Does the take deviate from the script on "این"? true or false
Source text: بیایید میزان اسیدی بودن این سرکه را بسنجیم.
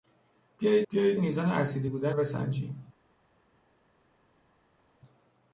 true